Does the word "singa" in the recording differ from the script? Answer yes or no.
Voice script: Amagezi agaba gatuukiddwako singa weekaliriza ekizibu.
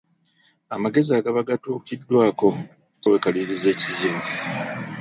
yes